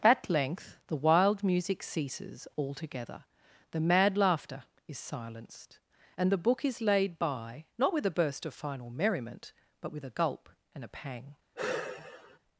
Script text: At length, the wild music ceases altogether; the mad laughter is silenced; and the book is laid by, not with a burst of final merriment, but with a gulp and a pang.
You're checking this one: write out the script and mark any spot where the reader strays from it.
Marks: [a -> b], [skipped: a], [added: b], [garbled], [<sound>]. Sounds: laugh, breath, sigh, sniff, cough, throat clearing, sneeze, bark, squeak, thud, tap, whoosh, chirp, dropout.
At length, the wild music ceases altogether; the mad laughter is silenced; and the book is laid by, not with a burst of final merriment, but with a gulp and a pang. [sigh]